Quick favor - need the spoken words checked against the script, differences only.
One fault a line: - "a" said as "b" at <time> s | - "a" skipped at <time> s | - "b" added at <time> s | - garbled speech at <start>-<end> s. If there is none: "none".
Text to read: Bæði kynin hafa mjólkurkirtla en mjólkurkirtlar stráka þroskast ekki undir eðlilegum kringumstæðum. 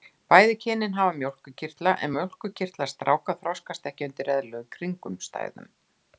none